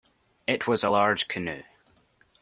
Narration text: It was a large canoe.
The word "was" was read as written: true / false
true